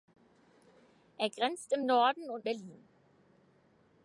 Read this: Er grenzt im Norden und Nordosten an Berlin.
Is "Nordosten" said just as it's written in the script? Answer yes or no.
no